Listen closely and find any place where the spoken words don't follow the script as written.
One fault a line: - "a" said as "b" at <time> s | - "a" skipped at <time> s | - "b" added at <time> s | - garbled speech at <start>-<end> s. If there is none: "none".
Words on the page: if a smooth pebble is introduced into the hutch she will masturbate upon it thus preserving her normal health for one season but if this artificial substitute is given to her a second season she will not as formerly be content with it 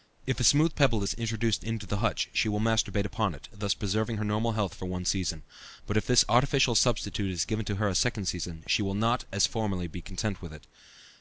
none